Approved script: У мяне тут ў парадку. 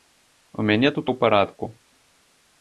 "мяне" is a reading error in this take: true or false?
false